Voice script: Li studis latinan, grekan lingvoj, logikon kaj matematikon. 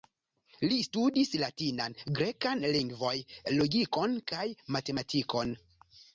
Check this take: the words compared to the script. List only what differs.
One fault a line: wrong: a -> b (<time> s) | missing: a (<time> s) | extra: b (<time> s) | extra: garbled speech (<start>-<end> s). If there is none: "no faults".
no faults